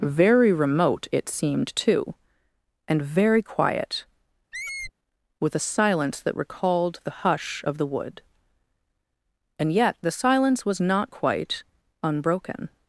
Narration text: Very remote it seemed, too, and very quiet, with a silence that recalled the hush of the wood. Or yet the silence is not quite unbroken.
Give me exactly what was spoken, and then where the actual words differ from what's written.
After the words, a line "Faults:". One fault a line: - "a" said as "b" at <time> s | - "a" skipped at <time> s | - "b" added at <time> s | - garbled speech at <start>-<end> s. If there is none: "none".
Very remote it seemed, too, and very quiet, with a silence that recalled the hush of the wood. And yet the silence was not quite unbroken.
Faults:
- "Or" said as "And" at 9.6 s
- "is" said as "was" at 10.7 s